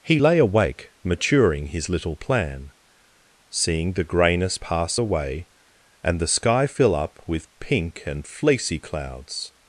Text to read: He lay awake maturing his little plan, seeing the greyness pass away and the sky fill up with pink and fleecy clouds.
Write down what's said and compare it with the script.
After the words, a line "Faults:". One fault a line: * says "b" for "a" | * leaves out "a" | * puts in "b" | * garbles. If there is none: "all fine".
He lay awake maturing his little plan, seeing the greyness pass away and the sky fill up with pink and fleecy clouds.
Faults:
all fine